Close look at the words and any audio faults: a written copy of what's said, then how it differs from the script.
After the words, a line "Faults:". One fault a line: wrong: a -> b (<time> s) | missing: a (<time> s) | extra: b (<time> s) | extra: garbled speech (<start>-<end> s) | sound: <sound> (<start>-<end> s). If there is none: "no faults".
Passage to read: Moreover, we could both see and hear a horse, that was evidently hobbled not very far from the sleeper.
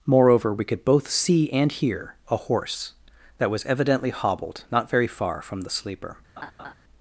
Moreover, we could both see and hear a horse, that was evidently hobbled not very far from the sleeper.
Faults:
sound: laugh (6.4-6.7 s)